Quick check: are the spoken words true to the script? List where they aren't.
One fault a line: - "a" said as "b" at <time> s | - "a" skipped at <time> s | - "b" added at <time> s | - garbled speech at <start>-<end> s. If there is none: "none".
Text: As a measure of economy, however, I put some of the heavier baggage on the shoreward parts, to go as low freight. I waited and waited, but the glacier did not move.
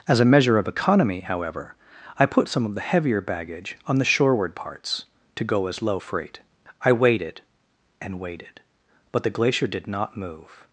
none